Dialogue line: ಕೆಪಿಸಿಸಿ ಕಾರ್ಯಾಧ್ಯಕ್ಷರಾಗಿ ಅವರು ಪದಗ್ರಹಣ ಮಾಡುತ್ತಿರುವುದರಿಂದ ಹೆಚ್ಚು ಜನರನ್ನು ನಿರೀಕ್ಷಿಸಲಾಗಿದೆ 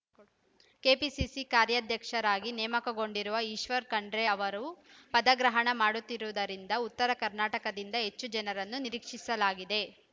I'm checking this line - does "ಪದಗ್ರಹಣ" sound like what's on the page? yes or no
yes